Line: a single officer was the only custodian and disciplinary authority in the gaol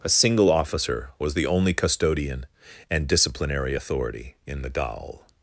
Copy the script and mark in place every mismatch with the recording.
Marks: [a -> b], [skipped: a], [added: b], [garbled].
a single officer was the only custodian and disciplinary authority in the gaol